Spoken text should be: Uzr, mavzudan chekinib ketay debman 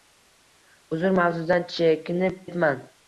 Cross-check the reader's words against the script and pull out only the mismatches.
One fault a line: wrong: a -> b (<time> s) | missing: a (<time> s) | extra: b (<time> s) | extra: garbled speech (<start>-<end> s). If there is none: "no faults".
missing: ketay (2.4 s)